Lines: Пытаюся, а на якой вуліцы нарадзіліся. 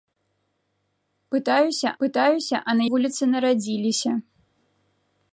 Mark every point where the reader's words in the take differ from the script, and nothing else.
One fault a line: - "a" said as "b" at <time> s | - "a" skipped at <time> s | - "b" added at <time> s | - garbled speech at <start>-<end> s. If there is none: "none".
- "пытаюся" added at 2.0 s
- "якой" skipped at 2.8 s